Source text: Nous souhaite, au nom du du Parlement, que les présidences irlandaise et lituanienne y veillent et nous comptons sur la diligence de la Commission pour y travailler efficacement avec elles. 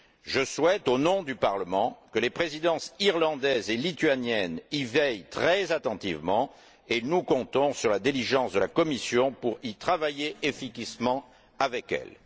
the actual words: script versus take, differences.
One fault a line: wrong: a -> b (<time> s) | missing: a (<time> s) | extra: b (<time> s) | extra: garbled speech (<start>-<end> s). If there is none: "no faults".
wrong: Nous -> Je (0.2 s)
missing: du (1.4 s)
extra: très attentivement (5.3 s)